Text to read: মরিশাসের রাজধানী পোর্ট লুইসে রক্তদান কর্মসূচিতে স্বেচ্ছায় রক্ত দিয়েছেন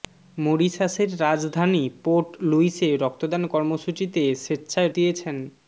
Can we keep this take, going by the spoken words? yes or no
no